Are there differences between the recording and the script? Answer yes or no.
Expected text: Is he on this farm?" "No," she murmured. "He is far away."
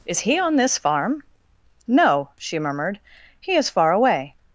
no